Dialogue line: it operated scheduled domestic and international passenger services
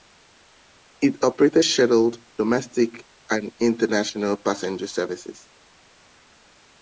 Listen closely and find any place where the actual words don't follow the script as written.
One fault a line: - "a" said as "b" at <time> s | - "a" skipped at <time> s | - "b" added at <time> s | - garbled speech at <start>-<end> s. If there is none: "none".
none